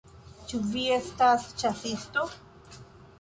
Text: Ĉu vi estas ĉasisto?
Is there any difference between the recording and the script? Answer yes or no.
no